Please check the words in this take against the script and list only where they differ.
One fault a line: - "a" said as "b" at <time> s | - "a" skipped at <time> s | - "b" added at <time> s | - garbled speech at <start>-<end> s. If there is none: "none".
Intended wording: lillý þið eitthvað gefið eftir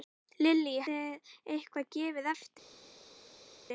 none